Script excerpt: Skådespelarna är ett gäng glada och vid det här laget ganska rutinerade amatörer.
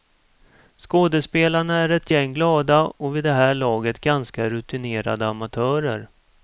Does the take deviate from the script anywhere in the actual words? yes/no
no